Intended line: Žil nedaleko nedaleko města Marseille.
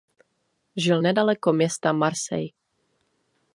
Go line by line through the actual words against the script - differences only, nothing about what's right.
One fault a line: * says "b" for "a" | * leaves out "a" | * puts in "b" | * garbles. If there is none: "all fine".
* leaves out "nedaleko"